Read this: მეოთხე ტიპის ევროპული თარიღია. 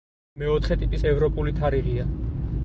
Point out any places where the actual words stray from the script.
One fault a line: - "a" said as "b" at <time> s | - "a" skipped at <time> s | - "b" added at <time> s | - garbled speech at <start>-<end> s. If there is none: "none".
none